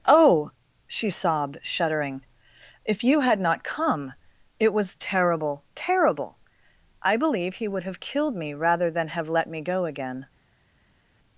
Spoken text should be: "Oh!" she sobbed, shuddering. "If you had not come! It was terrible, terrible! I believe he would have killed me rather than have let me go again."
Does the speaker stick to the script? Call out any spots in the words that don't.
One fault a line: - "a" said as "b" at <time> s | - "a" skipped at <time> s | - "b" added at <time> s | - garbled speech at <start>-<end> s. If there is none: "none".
none